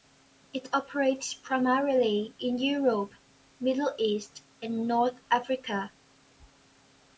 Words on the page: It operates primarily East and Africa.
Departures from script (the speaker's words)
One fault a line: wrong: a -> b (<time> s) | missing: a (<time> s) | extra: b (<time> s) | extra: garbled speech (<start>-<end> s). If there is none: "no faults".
extra: in Europe Middle (2.4 s)
extra: North (4.9 s)